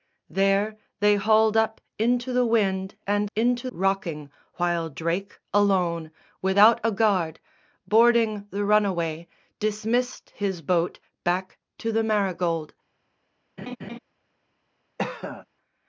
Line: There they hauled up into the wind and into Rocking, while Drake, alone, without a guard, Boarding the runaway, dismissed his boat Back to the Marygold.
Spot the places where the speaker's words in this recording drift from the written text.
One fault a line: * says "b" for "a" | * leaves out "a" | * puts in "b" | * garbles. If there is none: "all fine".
all fine